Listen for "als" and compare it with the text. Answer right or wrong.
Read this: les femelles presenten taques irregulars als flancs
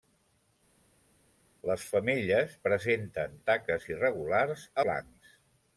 wrong